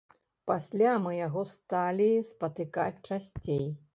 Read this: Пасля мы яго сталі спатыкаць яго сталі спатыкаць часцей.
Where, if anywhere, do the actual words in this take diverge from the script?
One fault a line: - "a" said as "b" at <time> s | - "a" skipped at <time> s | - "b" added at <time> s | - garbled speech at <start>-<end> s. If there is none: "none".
- "яго сталі спатыкаць" skipped at 3.0 s